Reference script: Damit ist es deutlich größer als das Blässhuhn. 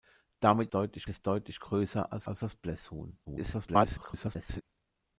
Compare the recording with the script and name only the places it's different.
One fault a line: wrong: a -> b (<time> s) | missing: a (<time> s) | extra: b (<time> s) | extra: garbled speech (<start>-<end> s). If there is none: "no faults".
wrong: ist -> deutlich (0.7 s)
extra: als (2.3 s)
extra: garbled speech (3.2-4.6 s)